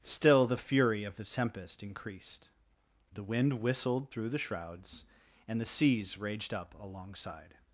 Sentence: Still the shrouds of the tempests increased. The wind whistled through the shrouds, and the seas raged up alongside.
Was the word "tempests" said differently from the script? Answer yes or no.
yes